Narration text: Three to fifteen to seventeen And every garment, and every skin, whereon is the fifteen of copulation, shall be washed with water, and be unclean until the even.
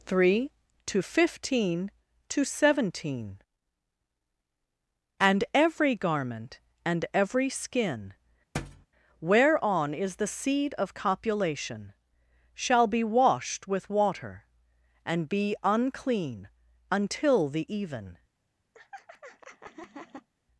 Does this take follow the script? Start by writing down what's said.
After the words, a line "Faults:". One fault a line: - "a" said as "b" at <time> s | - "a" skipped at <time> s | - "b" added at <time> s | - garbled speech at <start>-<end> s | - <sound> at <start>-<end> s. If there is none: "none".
Three to fifteen to seventeen And every garment, and every skin, whereon is the seed of copulation, shall be washed with water, and be unclean until the even.
Faults:
- thud at 8.5-8.9 s
- "fifteen" said as "seed" at 10.3 s
- laugh at 18.7-20.3 s